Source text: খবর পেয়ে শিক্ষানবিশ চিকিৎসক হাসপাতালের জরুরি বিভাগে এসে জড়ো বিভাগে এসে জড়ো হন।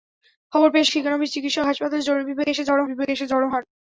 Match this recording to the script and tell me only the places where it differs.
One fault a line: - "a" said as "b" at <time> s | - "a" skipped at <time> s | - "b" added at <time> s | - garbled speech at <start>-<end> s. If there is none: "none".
none